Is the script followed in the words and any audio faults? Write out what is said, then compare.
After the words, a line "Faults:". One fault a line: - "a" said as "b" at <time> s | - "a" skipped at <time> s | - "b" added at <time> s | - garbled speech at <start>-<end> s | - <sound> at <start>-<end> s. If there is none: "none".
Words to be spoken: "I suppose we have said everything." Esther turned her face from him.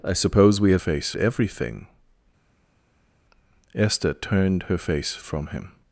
"I suppose we have face everything." Esther turned her face from him.
Faults:
- "said" said as "face" at 0.8 s